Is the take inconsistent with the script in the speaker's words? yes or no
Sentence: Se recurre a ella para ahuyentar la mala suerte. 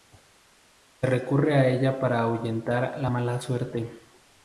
no